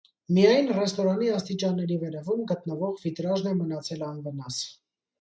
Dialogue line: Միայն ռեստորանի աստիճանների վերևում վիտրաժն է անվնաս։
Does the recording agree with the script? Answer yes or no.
no